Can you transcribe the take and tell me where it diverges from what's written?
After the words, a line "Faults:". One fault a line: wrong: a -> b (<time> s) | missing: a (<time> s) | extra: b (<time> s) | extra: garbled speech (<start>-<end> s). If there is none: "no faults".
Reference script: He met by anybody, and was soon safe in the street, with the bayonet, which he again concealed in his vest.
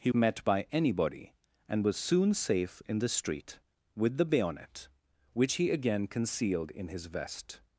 He met by anybody, and was soon safe in the street, with the bayonet, which he again concealed in his vest.
Faults:
no faults